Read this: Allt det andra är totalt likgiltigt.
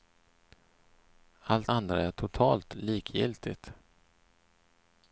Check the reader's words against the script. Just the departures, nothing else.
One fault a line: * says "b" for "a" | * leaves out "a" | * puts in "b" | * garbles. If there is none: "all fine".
* leaves out "det"